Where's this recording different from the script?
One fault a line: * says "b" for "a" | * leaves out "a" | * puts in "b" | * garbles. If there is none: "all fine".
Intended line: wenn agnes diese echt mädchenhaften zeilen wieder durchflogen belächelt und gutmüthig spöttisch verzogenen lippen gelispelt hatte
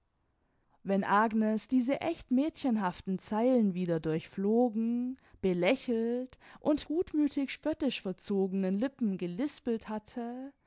all fine